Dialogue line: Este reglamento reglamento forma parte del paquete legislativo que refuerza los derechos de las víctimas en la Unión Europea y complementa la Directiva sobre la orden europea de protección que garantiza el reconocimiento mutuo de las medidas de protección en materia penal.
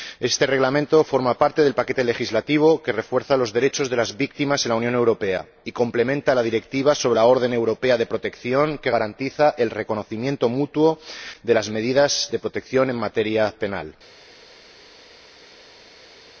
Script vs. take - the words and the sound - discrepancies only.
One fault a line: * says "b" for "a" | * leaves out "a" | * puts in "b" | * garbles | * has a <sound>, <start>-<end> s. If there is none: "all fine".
* leaves out "reglamento"